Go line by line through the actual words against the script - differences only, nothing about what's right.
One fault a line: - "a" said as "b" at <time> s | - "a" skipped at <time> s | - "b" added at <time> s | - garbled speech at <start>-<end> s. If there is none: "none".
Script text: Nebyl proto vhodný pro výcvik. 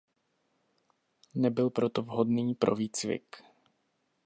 none